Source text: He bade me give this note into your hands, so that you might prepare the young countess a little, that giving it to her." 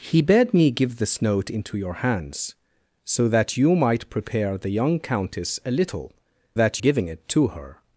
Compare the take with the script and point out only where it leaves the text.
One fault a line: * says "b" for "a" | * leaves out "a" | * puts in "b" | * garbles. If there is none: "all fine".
all fine